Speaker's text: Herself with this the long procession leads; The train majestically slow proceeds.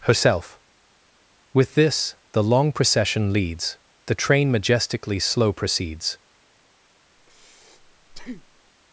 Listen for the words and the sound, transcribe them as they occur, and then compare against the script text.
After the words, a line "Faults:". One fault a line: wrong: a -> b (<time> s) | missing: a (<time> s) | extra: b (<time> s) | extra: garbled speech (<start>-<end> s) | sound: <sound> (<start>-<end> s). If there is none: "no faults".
Herself with this the long procession leads; The train majestically slow proceeds.
Faults:
sound: breath (7.2-8.7 s)